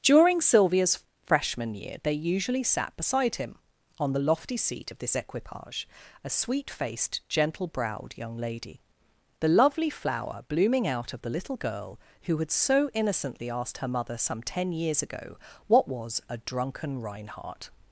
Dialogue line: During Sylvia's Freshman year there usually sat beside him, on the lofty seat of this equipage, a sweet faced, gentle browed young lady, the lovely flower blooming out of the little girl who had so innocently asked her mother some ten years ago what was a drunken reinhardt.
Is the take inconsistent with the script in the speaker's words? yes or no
yes